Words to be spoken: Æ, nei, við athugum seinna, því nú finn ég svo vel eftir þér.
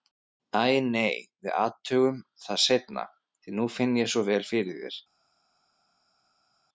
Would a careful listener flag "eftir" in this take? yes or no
yes